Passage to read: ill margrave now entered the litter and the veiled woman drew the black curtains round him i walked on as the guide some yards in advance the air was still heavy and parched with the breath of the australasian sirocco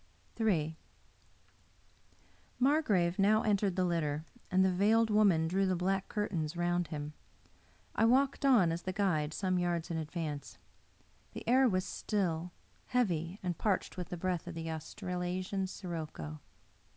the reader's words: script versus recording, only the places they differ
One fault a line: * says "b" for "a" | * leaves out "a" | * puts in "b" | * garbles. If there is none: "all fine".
all fine